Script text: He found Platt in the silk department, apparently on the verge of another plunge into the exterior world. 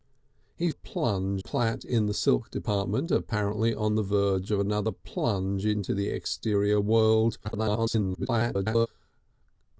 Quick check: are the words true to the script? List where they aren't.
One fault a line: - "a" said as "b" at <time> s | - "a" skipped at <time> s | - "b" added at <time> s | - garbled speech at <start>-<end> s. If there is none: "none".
- "found" said as "plunge" at 0.7 s
- garbled speech at 7.4-8.9 s